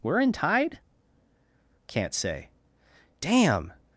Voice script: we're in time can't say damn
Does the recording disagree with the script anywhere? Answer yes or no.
yes